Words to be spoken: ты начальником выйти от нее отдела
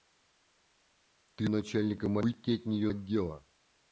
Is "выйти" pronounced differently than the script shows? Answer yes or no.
no